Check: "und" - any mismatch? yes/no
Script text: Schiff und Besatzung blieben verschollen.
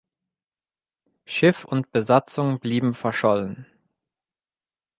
no